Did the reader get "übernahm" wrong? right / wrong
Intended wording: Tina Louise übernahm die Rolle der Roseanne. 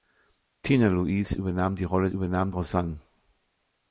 right